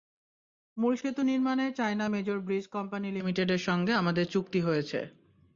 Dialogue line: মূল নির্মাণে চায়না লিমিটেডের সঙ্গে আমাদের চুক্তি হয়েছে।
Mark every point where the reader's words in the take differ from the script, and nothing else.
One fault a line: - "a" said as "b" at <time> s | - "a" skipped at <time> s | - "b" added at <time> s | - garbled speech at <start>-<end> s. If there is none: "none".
- "সেতু" added at 0.9 s
- "মেজর ব্রিজ কোম্পানি" added at 2.1 s